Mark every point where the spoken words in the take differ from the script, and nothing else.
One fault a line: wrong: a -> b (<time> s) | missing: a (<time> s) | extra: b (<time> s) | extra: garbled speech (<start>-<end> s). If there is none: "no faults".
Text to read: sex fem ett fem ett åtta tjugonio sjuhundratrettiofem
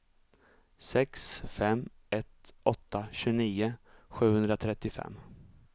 missing: fem ett (2.5 s)